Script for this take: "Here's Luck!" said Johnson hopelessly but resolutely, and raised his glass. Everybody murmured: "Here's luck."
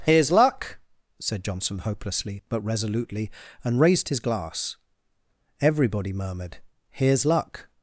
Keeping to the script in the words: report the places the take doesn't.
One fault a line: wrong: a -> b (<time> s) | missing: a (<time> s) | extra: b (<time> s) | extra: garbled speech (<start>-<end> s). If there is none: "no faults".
no faults